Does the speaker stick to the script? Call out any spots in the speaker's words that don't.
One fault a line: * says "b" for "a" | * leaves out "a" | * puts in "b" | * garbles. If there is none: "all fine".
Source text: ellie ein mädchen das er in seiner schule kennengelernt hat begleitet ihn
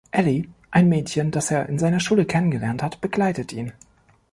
all fine